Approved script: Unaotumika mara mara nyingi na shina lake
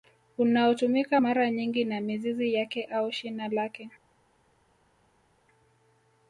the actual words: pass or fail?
fail